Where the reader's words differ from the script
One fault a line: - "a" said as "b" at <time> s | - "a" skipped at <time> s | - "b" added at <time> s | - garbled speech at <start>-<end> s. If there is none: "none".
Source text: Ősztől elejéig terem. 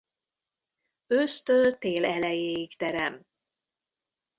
- "tél" added at 1.8 s